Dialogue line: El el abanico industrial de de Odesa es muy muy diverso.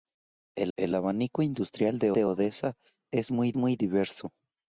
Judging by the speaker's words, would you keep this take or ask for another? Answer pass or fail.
pass